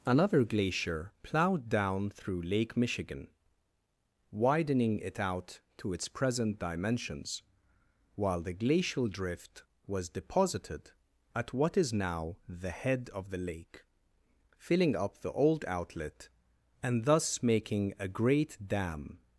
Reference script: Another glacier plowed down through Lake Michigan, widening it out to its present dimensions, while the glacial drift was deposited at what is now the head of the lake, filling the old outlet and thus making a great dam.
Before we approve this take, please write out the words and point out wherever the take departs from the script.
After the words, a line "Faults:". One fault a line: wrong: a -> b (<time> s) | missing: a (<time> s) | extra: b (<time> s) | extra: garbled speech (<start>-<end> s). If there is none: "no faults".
Another glacier plowed down through Lake Michigan, widening it out to its present dimensions, while the glacial drift was deposited at what is now the head of the lake, filling up the old outlet and thus making a great dam.
Faults:
extra: up (15.0 s)